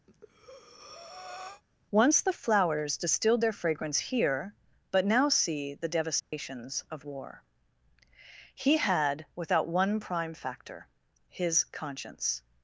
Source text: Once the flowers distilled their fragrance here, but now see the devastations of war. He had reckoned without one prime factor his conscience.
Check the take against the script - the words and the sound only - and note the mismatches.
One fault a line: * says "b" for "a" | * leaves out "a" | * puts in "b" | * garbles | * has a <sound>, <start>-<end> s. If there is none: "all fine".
* has a breath, 0.1-1.6 s
* has a dropout, 6.2-6.3 s
* leaves out "reckoned"